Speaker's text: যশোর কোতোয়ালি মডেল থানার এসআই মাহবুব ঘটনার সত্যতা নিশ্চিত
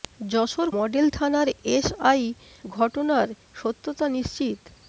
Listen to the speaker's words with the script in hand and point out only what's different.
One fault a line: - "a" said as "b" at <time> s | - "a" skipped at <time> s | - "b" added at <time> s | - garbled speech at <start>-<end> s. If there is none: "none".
- "কোতোয়ালি" skipped at 0.7 s
- "মাহবুব" skipped at 2.2 s